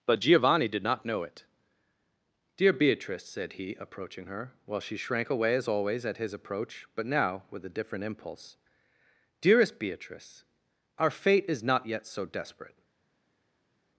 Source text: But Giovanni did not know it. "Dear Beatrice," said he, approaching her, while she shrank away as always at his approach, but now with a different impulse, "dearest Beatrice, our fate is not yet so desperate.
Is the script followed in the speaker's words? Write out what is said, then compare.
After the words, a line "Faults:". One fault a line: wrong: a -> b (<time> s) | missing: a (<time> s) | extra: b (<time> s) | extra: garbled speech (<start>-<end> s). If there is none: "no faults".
But Giovanni did not know it. "Dear Beatrice," said he, approaching her, while she shrank away as always at his approach, but now with a different impulse, "dearest Beatrice, our fate is not yet so desperate.
Faults:
no faults